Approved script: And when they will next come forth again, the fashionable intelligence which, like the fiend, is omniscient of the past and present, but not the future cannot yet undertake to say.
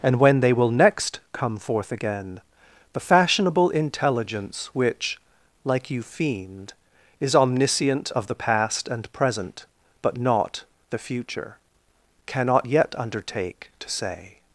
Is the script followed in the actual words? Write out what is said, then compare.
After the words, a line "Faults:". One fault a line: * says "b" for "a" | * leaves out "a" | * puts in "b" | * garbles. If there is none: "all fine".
And when they will next come forth again, the fashionable intelligence which, like you fiend, is omniscient of the past and present, but not the future cannot yet undertake to say.
Faults:
* says "you" for "the"